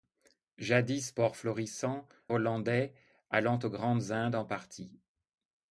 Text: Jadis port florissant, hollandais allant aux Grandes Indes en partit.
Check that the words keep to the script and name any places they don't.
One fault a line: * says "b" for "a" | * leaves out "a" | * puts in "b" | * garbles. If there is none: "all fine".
all fine